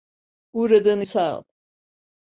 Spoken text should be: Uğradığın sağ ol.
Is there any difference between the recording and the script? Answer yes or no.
no